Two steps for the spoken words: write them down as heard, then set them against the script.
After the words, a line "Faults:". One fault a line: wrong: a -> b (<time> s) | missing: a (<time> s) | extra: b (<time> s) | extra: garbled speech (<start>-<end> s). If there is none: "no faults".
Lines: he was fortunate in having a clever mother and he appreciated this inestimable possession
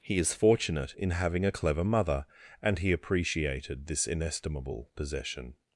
he is fortunate in having a clever mother and he appreciated this inestimable possession
Faults:
wrong: was -> is (0.2 s)